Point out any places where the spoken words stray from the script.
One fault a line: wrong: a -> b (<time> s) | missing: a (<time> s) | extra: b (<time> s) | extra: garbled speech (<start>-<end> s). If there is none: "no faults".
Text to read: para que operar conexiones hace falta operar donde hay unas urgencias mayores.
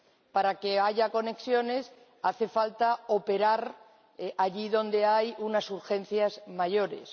wrong: operar -> haya (0.8 s)
extra: allí (4.4 s)